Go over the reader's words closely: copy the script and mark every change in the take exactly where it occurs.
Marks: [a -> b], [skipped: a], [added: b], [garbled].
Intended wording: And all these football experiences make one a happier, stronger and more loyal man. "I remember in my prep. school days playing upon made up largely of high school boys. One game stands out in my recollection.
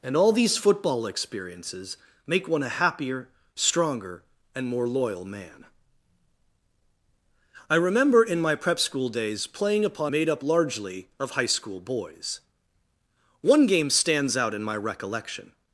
And all these football experiences make one a happier, stronger and more loyal man. "I remember in my prep. school days playing upon made up largely of high school boys. One game stands out in my recollection.